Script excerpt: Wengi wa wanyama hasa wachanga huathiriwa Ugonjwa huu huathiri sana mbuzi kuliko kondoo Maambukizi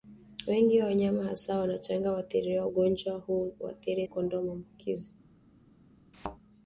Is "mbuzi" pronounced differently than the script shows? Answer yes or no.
yes